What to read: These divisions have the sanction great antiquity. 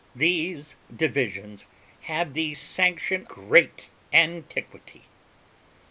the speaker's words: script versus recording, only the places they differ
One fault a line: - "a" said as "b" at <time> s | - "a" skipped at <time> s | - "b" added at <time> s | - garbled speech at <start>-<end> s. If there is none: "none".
none